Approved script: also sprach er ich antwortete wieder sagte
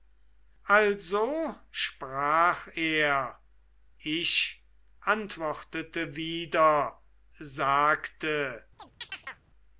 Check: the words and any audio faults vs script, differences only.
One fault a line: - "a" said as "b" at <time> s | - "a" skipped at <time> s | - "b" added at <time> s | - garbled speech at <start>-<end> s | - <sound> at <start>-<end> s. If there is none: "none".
- chirp at 8.8-9.4 s